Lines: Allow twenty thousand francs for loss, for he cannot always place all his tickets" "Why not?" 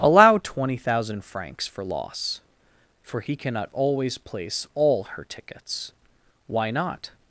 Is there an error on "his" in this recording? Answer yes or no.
yes